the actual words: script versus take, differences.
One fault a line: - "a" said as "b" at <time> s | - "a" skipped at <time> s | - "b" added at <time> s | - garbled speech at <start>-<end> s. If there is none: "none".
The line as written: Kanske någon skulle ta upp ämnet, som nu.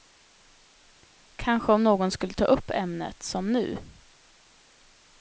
- "om" added at 1.7 s